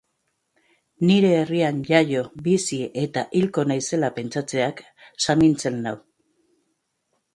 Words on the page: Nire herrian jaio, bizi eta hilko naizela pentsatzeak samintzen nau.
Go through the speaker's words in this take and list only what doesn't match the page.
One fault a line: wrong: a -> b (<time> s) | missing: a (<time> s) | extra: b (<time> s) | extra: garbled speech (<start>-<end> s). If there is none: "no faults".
no faults